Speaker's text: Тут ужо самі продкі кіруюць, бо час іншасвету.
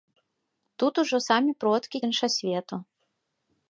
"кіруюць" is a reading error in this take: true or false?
true